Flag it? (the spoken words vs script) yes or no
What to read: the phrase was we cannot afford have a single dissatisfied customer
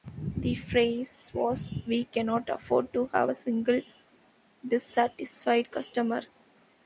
yes